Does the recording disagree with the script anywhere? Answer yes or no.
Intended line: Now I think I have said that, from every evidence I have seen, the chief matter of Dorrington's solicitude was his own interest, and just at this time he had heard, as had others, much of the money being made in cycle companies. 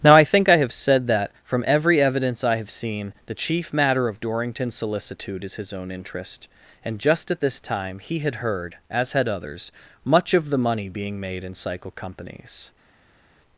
yes